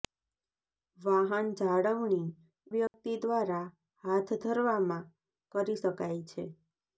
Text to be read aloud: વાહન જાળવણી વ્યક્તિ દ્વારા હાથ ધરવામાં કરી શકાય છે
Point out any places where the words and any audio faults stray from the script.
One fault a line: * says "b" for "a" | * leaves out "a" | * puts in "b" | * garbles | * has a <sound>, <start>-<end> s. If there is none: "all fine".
* has a dropout, 2.9-2.9 s